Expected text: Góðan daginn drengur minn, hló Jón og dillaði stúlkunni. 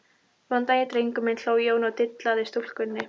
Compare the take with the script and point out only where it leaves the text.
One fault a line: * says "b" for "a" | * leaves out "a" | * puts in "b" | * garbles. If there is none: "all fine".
all fine